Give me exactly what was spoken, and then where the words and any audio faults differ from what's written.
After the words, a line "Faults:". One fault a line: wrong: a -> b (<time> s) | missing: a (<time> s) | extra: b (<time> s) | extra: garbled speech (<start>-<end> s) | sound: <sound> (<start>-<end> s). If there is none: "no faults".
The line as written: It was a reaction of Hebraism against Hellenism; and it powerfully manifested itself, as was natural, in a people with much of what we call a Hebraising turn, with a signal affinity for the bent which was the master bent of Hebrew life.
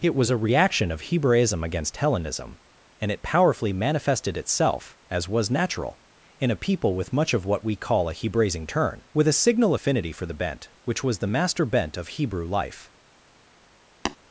It was a reaction of Hebraism against Hellenism; and it powerfully manifested itself, as was natural, in a people with much of what we call a Hebraising turn, with a signal affinity for the bent which was the master bent of Hebrew life.
Faults:
sound: tap (14.1-14.2 s)